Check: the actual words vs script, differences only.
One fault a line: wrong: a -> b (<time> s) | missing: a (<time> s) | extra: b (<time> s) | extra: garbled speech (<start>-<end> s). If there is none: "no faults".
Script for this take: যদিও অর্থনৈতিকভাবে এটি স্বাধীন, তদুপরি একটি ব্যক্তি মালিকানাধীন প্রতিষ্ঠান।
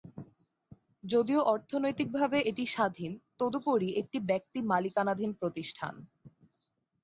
no faults